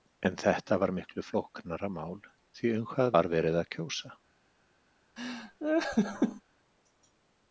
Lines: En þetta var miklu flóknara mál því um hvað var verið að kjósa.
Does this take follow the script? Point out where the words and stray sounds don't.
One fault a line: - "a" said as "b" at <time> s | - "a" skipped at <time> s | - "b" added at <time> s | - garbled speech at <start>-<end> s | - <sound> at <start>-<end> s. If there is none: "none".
- laugh at 5.2-6.4 s